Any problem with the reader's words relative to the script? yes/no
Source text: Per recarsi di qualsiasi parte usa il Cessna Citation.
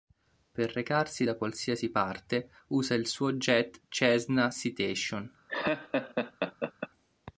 yes